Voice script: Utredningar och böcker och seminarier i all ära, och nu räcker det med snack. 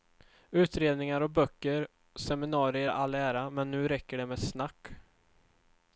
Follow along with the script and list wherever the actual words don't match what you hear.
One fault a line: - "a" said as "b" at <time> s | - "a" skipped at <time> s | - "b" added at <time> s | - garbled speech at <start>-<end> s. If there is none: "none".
- "och" said as "men" at 3.5 s